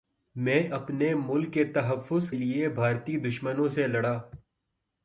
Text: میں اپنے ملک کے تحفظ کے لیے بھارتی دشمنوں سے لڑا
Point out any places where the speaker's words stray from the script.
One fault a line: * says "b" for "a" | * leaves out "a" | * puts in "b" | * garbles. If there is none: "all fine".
* leaves out "کے"